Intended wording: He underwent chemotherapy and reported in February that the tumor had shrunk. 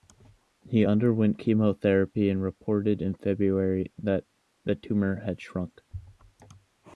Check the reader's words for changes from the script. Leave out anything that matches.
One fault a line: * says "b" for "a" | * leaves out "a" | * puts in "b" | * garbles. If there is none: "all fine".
all fine